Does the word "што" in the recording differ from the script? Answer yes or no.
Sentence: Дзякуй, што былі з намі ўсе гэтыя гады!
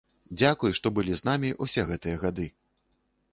no